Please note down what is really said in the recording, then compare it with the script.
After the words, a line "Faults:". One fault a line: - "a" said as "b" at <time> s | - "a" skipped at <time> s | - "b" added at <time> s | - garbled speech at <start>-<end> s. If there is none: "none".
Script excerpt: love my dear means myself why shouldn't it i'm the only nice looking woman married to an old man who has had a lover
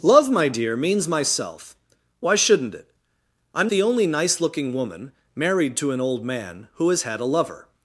love my dear means myself why shouldn't it i'm the only nice looking woman married to an old man who has had a lover
Faults:
none